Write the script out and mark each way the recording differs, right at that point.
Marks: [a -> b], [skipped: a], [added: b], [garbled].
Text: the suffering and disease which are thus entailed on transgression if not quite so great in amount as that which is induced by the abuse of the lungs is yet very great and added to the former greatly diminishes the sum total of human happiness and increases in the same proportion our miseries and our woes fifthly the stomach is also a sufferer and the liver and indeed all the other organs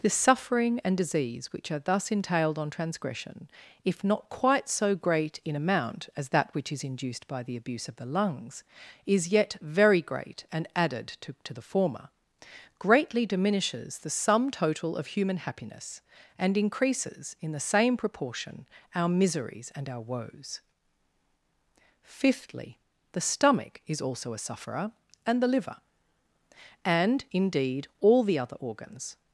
the suffering and disease which are thus entailed on transgression if not quite so great in amount as that which is induced by the abuse of the lungs is yet very great and added to [added: to] the former greatly diminishes the sum total of human happiness and increases in the same proportion our miseries and our woes fifthly the stomach is also a sufferer and the liver and indeed all the other organs